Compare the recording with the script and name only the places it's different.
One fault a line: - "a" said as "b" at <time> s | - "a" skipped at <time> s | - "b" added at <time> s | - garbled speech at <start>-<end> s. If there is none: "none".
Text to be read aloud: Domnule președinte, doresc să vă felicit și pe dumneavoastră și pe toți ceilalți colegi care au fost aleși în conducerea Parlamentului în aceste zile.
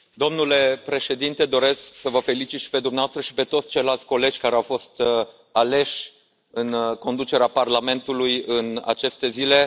none